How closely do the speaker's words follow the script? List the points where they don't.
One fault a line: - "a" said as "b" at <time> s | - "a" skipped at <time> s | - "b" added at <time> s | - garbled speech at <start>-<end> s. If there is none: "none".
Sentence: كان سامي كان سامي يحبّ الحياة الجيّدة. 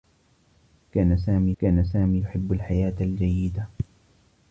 none